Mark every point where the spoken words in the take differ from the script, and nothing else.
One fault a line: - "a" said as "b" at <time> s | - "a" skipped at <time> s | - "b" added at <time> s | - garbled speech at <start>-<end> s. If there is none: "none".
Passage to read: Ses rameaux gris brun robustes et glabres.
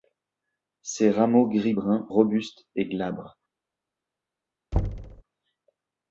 none